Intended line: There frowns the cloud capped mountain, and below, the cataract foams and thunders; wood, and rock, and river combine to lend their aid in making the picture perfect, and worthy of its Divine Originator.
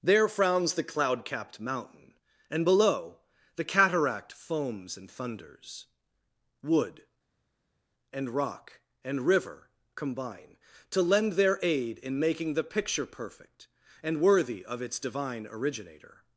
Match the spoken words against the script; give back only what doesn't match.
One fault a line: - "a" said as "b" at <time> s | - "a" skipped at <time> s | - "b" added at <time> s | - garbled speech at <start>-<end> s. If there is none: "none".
none